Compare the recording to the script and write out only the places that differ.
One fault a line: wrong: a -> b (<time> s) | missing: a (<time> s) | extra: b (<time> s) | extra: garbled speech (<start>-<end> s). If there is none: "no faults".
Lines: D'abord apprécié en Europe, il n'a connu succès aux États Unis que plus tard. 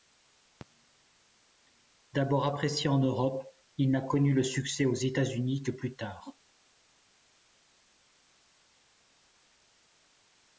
extra: le (4.3 s)